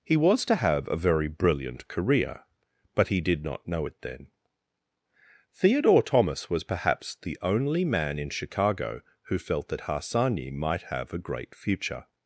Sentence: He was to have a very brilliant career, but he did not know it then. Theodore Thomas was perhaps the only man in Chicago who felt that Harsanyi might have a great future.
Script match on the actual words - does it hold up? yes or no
yes